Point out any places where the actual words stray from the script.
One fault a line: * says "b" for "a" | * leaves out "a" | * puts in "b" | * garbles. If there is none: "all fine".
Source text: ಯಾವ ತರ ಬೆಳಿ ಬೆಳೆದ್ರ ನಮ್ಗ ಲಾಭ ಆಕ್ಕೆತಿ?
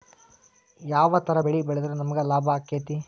all fine